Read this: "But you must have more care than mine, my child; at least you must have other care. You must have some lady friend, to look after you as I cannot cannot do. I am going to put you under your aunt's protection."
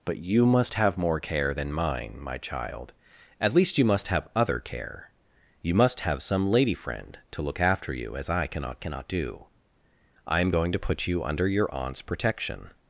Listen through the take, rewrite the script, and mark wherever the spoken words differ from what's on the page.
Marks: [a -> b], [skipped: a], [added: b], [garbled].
"But you must have more care than mine, my child; at least you must have other care. You must have some lady friend, to look after you as I cannot cannot do. I am going to put you under your aunt's protection."